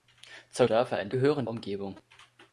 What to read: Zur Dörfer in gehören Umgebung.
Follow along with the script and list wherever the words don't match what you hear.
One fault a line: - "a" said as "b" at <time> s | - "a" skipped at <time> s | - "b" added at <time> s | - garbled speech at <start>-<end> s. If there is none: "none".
none